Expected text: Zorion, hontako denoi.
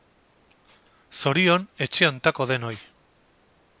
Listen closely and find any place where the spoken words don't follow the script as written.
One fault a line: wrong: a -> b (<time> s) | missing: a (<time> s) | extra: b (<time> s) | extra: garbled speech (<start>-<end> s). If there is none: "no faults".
extra: etxe (1.9 s)